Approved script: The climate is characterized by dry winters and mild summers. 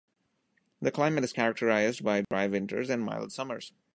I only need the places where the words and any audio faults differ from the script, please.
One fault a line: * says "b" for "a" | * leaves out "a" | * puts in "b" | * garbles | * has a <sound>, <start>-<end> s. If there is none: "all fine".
* has a dropout, 2.2-2.3 s